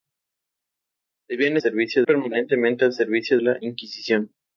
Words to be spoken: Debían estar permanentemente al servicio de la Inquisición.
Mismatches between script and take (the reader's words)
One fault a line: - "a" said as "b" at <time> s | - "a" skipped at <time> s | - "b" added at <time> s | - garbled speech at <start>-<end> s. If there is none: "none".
- "estar" said as "servicio" at 1.6 s
- "de" skipped at 3.4 s